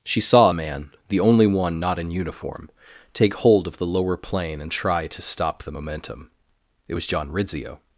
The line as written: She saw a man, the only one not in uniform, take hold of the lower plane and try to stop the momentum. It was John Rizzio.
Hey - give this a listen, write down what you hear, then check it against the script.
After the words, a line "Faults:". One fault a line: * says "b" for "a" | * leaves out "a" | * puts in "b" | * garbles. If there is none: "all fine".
She saw a man, the only one not in uniform, take hold of the lower plane and try to stop the momentum. It was John Rizzio.
Faults:
all fine